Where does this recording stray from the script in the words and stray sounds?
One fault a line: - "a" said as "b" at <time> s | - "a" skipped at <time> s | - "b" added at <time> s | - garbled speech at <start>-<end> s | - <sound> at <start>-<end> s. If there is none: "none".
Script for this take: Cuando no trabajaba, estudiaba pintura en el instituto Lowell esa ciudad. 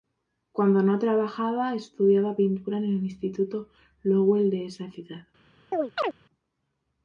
- "de" added at 4.5 s
- chirp at 5.7-6.1 s